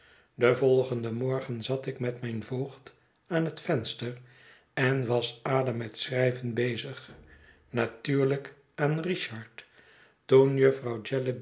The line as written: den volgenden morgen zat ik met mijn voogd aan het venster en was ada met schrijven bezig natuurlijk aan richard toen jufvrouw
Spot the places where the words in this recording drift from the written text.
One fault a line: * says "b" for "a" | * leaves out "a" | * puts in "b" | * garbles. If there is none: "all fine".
all fine